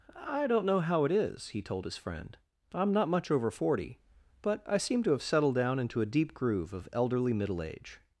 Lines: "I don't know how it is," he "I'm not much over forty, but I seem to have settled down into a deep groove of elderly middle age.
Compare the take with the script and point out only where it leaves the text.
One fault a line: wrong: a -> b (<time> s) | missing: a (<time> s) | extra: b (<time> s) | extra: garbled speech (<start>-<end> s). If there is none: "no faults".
extra: told his friend (1.6 s)